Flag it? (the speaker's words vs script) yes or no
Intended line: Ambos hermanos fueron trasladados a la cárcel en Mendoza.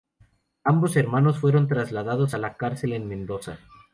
no